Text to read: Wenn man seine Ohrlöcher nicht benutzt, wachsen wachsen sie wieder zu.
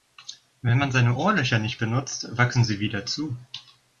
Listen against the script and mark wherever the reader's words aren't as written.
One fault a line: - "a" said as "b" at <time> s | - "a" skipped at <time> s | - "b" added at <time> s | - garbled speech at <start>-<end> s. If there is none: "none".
- "wachsen" skipped at 2.6 s